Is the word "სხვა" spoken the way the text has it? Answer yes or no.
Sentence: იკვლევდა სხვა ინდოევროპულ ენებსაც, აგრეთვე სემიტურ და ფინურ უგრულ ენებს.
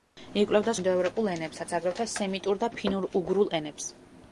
no